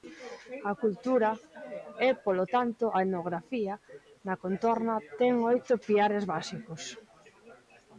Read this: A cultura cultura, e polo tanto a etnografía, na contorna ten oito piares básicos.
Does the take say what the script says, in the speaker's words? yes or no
no